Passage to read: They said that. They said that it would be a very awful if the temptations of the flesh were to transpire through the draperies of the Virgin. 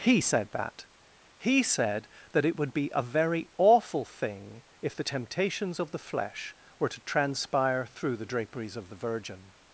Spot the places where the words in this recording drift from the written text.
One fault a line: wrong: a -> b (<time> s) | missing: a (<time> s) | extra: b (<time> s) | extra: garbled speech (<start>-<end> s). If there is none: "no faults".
wrong: They -> He (0.0 s)
wrong: They -> He (1.4 s)
extra: thing (4.1 s)